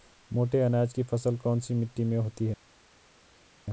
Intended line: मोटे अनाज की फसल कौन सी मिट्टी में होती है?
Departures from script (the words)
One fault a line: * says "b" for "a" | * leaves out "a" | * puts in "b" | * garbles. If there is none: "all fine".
all fine